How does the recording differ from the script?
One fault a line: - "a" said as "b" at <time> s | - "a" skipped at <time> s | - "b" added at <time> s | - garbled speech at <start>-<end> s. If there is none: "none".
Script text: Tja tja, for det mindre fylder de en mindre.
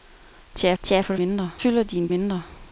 none